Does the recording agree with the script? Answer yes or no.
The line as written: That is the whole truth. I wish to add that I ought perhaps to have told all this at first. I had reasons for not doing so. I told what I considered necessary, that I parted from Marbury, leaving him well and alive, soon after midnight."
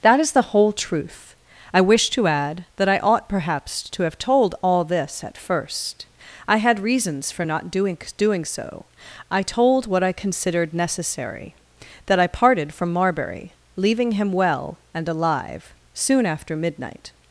no